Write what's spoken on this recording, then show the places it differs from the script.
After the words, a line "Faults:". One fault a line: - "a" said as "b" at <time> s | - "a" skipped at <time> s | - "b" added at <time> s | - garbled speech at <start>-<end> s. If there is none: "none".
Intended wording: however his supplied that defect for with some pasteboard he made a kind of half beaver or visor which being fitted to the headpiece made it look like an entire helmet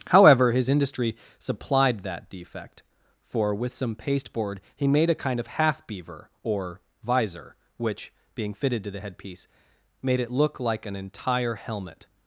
however his industry supplied that defect for with some pasteboard he made a kind of half beaver or visor which being fitted to the headpiece made it look like an entire helmet
Faults:
- "industry" added at 0.7 s